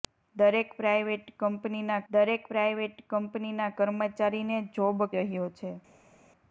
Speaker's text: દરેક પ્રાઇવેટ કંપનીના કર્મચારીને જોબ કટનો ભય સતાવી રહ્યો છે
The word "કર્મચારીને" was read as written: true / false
false